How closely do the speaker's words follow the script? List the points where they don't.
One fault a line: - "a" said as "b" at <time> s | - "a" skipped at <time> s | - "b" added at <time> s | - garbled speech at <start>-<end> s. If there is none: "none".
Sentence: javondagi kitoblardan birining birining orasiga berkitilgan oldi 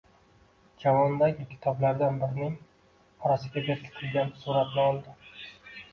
- "birining" skipped at 2.6 s
- "suratni" added at 4.5 s